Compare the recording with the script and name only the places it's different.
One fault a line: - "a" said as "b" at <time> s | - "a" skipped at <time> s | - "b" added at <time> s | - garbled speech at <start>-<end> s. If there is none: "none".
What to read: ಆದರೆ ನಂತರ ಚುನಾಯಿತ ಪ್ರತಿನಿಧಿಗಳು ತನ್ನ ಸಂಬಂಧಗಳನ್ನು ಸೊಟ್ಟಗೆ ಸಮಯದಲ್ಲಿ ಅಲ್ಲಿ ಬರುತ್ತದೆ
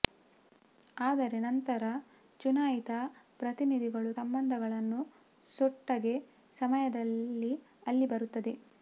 - "ತನ್ನ" skipped at 4.1 s